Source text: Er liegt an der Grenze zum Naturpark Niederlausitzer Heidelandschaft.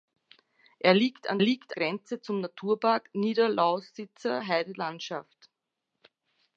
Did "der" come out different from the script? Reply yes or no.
yes